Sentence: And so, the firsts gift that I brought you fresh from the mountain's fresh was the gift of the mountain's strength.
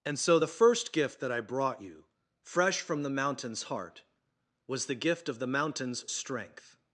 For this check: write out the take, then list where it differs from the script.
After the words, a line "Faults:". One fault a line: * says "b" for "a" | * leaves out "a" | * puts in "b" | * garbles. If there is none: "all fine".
And so, the first gift that I brought you fresh from the mountain's heart was the gift of the mountain's strength.
Faults:
* says "first" for "firsts"
* says "heart" for "fresh"